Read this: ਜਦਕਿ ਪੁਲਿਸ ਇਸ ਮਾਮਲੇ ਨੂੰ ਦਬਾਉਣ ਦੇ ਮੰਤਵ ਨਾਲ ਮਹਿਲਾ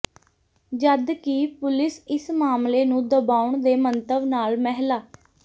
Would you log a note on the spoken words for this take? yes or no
no